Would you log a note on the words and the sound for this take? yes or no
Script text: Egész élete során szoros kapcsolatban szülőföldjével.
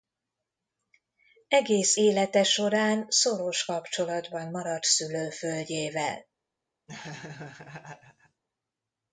yes